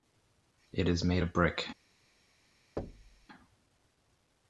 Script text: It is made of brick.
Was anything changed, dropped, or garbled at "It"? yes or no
no